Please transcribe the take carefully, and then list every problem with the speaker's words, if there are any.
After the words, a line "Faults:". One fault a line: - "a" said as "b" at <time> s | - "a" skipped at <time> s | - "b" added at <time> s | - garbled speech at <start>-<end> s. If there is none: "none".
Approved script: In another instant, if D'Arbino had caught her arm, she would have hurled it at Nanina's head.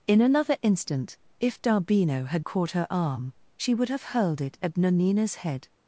In another instant, if D'Arbino had caught her arm, she would have hurled it at Nanina's head.
Faults:
none